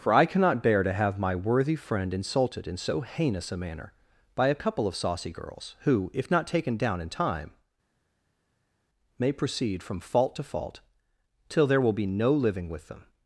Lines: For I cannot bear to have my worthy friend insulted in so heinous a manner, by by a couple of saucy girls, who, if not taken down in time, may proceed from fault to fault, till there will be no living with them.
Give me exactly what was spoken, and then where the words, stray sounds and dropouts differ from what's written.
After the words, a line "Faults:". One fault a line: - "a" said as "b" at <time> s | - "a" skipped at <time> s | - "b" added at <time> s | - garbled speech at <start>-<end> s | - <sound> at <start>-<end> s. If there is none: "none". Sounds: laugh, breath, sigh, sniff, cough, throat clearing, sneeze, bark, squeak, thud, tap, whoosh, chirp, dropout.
For I cannot bear to have my worthy friend insulted in so heinous a manner, by a couple of saucy girls, who, if not taken down in time, may proceed from fault to fault, till there will be no living with them.
Faults:
- "by" skipped at 4.5 s